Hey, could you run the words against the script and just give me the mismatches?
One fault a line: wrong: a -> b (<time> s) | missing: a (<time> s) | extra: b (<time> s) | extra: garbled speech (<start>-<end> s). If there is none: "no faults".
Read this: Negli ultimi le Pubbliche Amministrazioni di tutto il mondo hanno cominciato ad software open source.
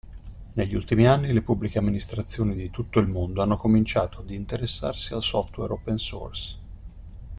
extra: anni (1.1 s)
extra: interessarsi al (4.3 s)